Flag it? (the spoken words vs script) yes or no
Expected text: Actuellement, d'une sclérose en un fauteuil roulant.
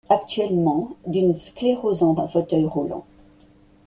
no